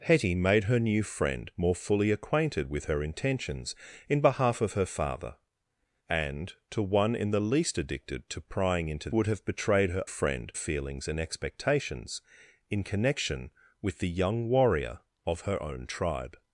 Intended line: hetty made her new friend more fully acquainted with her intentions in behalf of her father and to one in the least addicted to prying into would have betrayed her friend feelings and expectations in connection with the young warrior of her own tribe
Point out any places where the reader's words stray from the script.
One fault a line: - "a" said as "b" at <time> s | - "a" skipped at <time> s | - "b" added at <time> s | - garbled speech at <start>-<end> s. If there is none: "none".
none